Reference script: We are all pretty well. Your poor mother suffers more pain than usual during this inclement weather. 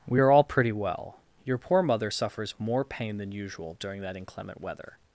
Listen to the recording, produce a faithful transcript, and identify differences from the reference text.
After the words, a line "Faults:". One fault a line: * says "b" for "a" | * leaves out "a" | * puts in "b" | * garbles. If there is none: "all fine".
We are all pretty well. Your poor mother suffers more pain than usual during that inclement weather.
Faults:
* says "that" for "this"